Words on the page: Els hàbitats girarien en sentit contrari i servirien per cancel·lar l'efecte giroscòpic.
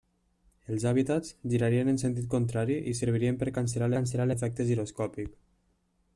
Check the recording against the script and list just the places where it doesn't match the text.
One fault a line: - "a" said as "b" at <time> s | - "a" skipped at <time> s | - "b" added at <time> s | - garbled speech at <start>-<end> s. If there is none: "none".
- "cancel·lar" added at 4.0 s